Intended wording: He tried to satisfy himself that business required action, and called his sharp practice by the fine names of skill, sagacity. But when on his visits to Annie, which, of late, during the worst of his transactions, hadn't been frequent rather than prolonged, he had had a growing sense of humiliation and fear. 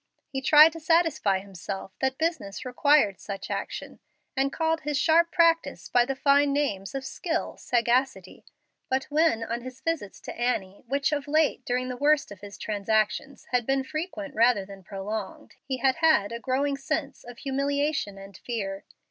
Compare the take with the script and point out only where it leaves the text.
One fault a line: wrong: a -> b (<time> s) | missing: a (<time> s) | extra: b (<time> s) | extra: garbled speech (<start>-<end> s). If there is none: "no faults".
extra: such (3.2 s)
wrong: hadn't -> had (13.5 s)